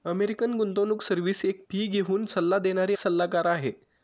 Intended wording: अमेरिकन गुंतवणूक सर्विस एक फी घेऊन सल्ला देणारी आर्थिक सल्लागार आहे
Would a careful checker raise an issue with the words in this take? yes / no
yes